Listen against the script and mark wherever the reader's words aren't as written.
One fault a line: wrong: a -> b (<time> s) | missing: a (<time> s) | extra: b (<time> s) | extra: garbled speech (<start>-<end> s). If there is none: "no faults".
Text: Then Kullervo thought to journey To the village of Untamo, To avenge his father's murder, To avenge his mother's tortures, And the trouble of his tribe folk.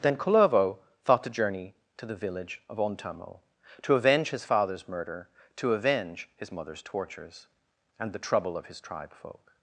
no faults